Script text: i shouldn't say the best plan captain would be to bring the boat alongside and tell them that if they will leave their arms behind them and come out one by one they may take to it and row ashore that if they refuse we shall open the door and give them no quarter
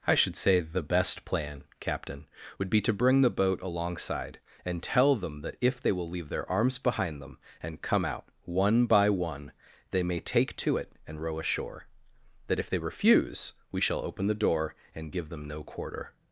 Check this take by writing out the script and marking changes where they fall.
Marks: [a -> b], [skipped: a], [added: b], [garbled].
i [shouldn't -> should] say the best plan captain would be to bring the boat alongside and tell them that if they will leave their arms behind them and come out one by one they may take to it and row ashore that if they refuse we shall open the door and give them no quarter